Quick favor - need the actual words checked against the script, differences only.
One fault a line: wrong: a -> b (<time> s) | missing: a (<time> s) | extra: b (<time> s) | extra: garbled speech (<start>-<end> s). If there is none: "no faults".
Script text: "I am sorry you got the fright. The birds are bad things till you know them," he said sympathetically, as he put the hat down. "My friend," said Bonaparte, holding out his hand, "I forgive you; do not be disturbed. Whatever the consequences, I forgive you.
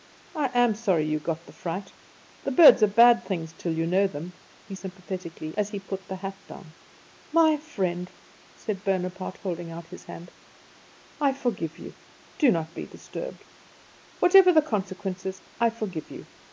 missing: said (4.7 s)